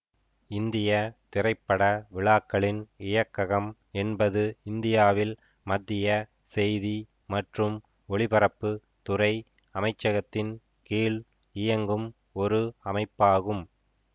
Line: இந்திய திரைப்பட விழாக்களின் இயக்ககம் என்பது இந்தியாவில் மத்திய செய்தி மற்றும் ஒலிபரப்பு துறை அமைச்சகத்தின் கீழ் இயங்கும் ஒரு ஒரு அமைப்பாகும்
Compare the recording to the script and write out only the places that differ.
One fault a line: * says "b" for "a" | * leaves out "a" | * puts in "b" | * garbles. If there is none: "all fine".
* leaves out "ஒரு"